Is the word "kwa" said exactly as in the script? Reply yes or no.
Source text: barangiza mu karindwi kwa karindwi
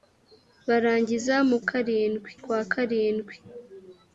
yes